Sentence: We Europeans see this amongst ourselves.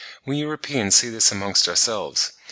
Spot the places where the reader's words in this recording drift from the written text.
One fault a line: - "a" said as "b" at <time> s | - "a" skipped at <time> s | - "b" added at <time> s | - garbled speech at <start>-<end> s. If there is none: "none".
none